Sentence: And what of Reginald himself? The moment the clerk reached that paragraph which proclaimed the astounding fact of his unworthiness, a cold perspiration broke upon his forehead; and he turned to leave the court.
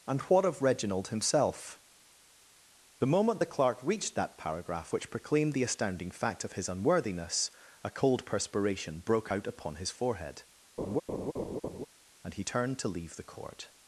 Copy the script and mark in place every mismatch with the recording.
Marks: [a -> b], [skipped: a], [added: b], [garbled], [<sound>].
And what of Reginald himself? The moment the clerk reached that paragraph which proclaimed the astounding fact of his unworthiness, a cold perspiration broke [added: out] upon his forehead; [laugh] and he turned to leave the court.